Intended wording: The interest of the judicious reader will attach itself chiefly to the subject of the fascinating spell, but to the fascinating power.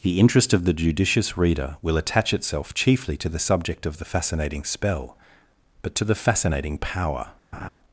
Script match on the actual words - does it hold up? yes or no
yes